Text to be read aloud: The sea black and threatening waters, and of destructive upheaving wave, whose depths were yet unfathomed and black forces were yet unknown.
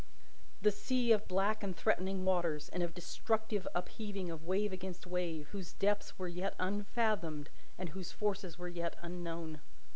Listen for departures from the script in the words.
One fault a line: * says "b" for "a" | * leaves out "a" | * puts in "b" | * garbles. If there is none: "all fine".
* puts in "of"
* puts in "of"
* puts in "against wave"
* says "whose" for "black"